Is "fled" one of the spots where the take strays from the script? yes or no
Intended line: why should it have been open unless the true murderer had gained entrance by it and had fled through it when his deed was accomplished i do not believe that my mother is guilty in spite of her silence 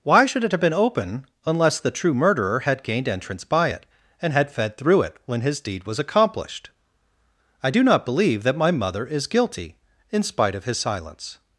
yes